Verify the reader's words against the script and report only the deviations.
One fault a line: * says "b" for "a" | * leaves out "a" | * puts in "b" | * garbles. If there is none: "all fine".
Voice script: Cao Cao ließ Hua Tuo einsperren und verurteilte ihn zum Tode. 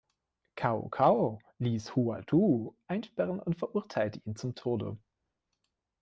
all fine